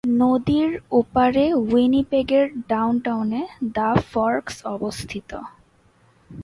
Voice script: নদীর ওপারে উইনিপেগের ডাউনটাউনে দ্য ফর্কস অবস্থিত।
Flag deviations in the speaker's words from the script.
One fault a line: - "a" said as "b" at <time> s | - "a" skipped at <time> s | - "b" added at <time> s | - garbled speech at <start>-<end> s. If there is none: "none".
none